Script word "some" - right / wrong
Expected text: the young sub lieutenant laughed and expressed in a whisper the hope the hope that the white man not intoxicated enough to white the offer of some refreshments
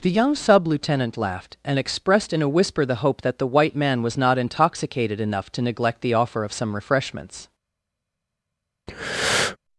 right